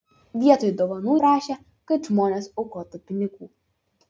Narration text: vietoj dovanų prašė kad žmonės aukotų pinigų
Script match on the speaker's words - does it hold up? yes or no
yes